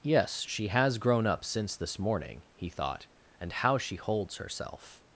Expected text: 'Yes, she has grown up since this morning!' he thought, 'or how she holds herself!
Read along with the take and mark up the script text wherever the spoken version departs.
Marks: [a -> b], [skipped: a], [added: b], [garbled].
'Yes, she has grown up since this morning!' he thought, ['or -> and] how she holds herself!